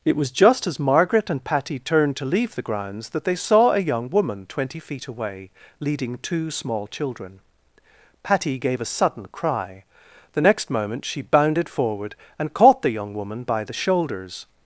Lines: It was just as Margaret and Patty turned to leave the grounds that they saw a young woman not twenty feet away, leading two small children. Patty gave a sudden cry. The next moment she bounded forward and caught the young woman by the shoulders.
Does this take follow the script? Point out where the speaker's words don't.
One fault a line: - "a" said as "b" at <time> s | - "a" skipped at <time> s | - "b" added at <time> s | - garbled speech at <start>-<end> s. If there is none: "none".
- "not" skipped at 4.5 s